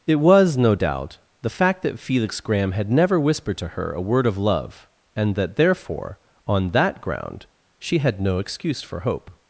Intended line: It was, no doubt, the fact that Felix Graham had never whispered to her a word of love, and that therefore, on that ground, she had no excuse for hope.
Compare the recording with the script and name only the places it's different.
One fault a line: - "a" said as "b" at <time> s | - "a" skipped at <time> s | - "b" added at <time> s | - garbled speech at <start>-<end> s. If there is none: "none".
none